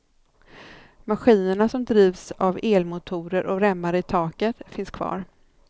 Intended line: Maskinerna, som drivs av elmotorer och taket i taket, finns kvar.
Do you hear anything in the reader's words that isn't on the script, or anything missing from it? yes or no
yes